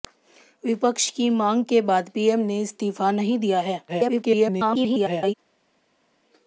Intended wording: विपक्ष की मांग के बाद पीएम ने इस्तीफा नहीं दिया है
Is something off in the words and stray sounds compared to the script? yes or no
yes